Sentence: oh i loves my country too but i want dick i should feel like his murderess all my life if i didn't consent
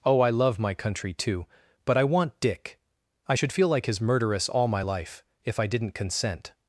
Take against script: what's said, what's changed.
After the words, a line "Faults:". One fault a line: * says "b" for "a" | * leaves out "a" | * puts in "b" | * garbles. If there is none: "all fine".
oh i love my country too but i want dick i should feel like his murderess all my life if i didn't consent
Faults:
* says "love" for "loves"